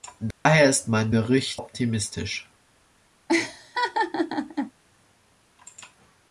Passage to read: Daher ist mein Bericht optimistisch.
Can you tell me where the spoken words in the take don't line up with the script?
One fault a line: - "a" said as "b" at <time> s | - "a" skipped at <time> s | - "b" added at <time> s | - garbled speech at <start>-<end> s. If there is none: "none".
none